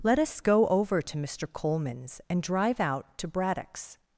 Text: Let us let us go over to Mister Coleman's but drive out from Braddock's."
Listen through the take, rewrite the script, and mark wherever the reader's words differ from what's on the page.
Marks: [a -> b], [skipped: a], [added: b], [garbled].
Let us [skipped: let us] go over to Mister Coleman's [but -> and] drive out [from -> to] Braddock's."